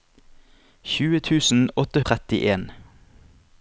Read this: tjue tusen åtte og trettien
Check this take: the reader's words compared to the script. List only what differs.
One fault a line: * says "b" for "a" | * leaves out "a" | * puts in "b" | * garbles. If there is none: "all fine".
all fine